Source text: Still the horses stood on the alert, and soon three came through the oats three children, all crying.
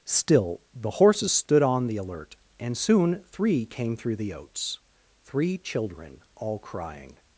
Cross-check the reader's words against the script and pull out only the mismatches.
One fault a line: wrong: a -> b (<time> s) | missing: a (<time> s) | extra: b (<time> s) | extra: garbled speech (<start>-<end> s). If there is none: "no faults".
no faults